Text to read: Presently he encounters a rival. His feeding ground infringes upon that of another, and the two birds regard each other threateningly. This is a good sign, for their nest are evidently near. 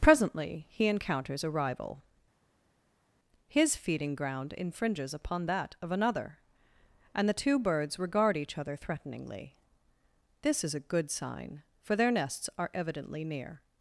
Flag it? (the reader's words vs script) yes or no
yes